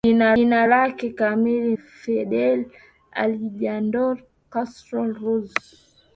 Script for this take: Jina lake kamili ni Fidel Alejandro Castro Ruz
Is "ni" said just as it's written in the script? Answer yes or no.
no